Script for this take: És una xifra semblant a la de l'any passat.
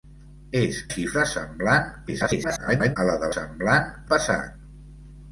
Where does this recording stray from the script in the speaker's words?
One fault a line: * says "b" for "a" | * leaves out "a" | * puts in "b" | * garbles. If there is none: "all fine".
* leaves out "una"
* garbles
* says "semblant" for "l'any"